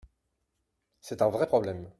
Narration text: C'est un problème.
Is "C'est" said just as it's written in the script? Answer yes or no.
yes